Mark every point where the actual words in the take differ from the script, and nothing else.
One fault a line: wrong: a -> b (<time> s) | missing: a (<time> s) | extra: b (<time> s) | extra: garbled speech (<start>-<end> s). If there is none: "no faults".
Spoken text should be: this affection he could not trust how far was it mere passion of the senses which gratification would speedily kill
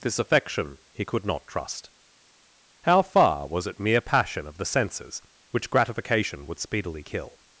no faults